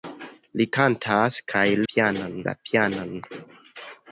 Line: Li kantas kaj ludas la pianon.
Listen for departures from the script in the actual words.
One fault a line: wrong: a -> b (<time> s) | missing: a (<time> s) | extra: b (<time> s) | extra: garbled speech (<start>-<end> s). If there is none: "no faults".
wrong: ludas -> pianon (1.9 s)